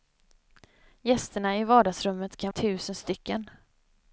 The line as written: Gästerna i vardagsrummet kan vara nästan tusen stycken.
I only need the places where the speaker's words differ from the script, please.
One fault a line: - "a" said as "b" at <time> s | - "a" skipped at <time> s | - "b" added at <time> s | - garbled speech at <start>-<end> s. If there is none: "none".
- "vara nästan" skipped at 2.5 s